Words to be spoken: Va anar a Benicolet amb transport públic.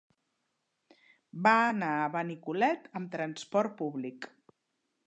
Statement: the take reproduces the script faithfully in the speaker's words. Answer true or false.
true